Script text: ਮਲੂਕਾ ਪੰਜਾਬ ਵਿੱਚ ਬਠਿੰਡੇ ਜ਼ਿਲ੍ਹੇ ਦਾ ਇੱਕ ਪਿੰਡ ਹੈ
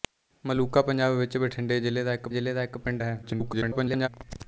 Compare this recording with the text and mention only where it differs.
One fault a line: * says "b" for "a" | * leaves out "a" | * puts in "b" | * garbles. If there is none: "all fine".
* puts in "ਜ਼ਿਲ੍ਹੇ ਦਾ ਇੱਕ"
* garbles